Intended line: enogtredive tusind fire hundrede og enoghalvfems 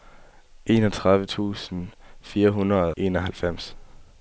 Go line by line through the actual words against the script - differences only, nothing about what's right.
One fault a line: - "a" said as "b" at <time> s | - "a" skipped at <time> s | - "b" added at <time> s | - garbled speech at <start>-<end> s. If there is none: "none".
- "og" skipped at 2.9 s